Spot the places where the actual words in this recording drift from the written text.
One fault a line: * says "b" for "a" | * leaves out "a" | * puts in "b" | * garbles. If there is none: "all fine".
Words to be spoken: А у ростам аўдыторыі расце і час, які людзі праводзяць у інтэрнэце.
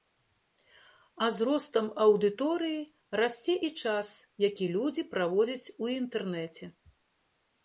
* says "з" for "у"